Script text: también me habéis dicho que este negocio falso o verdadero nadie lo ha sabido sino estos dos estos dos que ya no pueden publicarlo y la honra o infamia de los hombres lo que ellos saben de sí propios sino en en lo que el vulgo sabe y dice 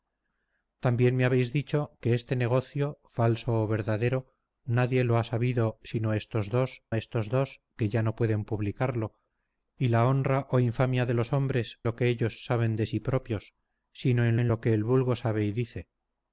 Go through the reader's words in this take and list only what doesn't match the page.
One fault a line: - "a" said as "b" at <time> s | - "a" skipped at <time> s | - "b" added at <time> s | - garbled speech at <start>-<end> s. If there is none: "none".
none